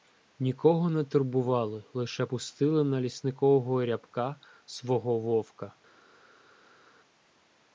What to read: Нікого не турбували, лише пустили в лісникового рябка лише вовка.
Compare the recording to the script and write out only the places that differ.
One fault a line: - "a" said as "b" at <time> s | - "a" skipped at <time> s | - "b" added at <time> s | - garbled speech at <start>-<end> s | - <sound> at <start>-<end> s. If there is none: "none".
- "в" said as "на" at 2.8 s
- "лише" said as "свого" at 4.6 s